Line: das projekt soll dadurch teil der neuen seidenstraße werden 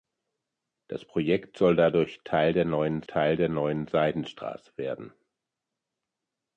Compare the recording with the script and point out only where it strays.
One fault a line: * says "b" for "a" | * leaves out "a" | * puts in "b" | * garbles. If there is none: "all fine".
* puts in "teil der neuen"